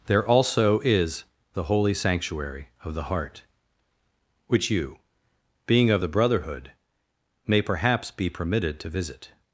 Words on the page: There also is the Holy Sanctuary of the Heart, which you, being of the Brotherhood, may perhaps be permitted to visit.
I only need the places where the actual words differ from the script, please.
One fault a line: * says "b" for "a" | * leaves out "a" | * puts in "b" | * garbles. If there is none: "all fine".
all fine